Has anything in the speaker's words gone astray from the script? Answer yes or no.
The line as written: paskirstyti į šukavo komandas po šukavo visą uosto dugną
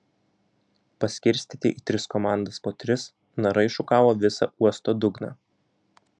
yes